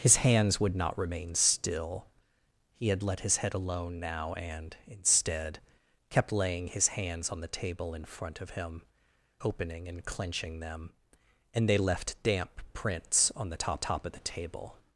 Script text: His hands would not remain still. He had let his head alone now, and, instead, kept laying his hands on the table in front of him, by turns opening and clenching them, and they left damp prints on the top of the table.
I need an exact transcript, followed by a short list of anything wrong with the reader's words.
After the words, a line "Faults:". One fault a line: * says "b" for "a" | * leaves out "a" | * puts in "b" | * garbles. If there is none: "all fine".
His hands would not remain still. He had let his head alone now, and, instead, kept laying his hands on the table in front of him, opening and clenching them, and they left damp prints on the top top of the table.
Faults:
* leaves out "by turns"
* puts in "top"